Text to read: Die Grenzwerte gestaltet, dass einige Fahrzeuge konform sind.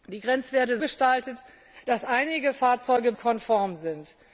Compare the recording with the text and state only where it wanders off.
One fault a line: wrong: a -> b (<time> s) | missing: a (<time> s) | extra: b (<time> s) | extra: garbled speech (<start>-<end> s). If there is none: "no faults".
no faults